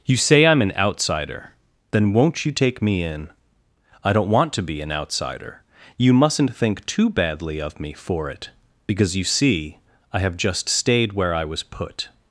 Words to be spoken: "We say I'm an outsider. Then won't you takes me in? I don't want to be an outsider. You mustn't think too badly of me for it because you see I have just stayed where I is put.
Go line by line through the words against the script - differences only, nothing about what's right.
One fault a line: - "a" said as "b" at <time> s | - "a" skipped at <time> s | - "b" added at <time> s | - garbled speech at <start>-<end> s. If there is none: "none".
- "We" said as "You" at 0.1 s
- "takes" said as "take" at 2.5 s
- "is" said as "was" at 11.4 s